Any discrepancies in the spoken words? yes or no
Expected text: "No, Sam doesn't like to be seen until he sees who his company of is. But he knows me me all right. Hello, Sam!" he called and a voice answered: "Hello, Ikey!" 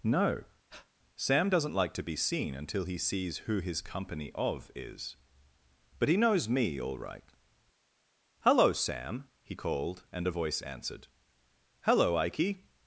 yes